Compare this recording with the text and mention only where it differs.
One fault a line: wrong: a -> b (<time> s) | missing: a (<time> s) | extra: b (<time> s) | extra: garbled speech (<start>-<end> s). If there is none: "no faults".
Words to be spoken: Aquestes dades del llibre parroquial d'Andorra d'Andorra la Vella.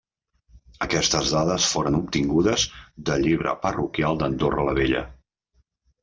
extra: foren obtingudes (1.7 s)
missing: d'Andorra (4.7 s)